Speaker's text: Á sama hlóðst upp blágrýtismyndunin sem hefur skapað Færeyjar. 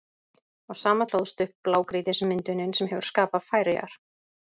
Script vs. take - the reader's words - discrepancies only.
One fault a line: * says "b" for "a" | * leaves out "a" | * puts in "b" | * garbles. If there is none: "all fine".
all fine